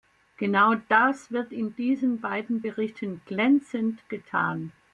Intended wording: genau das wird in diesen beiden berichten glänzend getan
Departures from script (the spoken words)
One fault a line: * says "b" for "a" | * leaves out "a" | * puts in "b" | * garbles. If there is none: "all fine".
all fine